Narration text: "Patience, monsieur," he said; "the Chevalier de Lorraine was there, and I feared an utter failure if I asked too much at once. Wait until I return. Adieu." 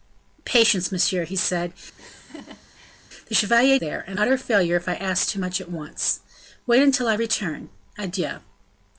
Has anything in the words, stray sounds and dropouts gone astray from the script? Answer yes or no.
yes